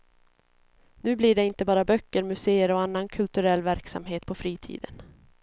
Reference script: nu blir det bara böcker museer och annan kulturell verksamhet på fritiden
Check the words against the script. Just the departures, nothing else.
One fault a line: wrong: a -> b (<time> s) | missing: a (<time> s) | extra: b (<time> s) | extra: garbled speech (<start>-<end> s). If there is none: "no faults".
extra: inte (1.4 s)